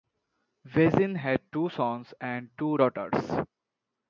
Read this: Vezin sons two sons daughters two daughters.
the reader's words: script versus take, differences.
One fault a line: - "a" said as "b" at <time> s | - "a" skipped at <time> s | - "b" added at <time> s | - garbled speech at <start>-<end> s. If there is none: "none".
- "sons" said as "had" at 1.2 s
- "daughters" said as "and" at 2.2 s